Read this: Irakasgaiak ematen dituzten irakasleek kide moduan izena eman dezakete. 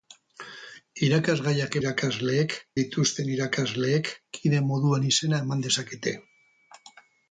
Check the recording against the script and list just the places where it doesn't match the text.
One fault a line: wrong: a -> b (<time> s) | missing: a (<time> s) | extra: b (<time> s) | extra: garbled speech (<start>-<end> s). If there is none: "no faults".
wrong: ematen -> irakasleek (1.8 s)